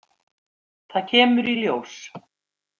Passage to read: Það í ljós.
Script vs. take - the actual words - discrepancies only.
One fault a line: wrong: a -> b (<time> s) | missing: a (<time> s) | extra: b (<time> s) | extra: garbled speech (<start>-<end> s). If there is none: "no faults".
extra: kemur (1.1 s)